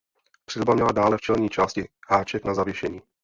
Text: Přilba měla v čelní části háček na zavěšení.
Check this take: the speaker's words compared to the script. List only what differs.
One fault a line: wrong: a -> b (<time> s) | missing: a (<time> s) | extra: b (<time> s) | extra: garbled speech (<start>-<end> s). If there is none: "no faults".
extra: dále (0.9 s)